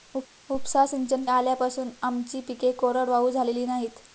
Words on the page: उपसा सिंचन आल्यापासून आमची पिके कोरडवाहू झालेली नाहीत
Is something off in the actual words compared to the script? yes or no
no